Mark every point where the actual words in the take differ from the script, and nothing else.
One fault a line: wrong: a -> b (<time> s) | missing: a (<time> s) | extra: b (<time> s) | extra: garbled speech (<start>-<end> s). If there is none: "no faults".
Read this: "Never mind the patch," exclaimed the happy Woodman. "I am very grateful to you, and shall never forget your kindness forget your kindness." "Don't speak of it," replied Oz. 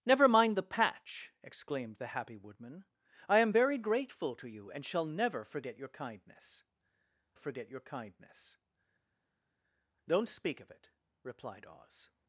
no faults